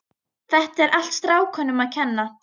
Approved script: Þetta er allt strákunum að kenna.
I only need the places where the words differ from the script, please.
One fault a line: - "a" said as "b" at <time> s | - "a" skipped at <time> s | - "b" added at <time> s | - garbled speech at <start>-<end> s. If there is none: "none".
none